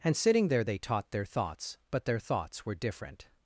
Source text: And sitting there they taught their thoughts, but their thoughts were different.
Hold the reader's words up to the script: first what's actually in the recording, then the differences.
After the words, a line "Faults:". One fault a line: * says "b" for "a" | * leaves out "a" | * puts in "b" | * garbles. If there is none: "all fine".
And sitting there they taught their thoughts, but their thoughts were different.
Faults:
all fine